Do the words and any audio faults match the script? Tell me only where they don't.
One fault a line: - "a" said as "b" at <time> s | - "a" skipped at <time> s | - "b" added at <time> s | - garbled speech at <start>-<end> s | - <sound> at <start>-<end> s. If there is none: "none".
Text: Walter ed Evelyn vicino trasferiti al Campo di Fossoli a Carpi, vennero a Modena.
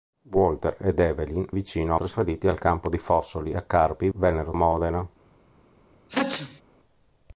- sneeze at 6.1-6.6 s